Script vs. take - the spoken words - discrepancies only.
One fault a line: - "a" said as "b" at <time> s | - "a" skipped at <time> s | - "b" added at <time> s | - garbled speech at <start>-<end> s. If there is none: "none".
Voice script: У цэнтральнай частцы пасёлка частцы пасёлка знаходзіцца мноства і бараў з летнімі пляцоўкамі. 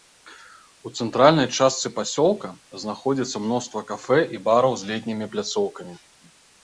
- "частцы пасёлка" skipped at 2.5 s
- "кафэ" added at 3.9 s